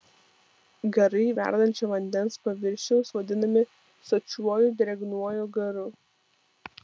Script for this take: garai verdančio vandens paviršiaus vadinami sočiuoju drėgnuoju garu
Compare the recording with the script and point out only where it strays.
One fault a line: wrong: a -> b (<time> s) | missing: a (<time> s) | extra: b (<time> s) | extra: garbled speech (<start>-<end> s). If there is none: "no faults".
no faults